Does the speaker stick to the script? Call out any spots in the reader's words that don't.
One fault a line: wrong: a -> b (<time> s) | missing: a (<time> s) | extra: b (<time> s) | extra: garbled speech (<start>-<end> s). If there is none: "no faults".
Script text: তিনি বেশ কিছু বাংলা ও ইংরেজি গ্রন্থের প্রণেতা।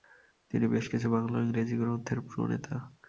no faults